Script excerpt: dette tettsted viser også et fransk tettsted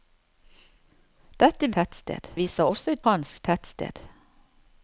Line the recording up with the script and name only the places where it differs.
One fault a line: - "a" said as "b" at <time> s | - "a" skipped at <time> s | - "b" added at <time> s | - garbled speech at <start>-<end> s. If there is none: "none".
none